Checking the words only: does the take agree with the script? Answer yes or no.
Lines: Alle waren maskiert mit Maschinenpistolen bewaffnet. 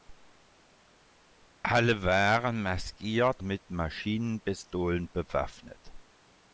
yes